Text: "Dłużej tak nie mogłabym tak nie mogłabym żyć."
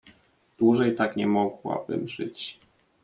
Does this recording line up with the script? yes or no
no